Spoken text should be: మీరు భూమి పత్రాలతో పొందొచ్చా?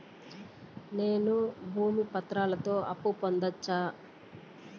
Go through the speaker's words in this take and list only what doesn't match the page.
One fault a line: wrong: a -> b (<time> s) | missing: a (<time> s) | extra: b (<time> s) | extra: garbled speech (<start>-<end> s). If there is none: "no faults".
wrong: మీరు -> నేను (0.9 s)
extra: అప్పు (2.9 s)